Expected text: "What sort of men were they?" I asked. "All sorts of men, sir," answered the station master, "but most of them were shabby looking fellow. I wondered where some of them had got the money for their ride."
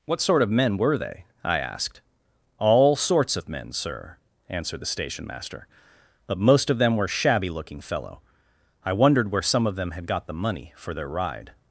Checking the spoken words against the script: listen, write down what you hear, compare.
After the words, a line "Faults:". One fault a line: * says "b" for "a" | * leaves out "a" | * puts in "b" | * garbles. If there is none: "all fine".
"What sort of men were they?" I asked. "All sorts of men, sir," answered the station master, "but most of them were shabby looking fellow. I wondered where some of them had got the money for their ride."
Faults:
all fine